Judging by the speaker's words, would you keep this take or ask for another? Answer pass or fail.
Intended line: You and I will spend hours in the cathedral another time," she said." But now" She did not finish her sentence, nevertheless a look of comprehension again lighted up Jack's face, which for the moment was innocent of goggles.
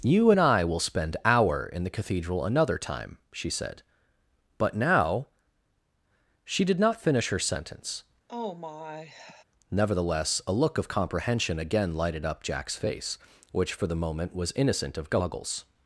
fail